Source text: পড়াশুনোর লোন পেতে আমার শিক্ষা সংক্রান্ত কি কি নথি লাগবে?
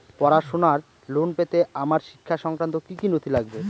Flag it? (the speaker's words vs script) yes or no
no